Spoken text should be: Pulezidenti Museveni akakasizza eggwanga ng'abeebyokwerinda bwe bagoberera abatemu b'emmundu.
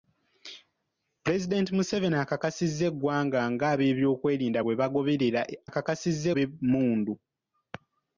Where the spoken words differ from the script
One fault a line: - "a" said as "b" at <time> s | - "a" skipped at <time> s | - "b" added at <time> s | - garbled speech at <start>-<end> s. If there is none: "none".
- "abatemu" said as "akakasizza" at 5.7 s